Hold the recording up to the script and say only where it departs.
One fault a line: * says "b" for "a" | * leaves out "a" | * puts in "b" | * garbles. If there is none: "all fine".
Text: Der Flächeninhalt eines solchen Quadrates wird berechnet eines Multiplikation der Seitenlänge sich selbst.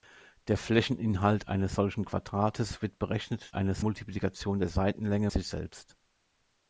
all fine